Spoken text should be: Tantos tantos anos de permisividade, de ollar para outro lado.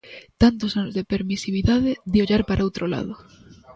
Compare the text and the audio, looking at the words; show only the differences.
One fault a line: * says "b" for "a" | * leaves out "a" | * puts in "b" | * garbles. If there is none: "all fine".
* leaves out "tantos"